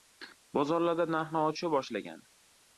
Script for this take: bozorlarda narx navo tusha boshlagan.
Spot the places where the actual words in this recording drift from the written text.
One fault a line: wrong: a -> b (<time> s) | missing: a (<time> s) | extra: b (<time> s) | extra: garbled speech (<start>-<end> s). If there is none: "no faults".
no faults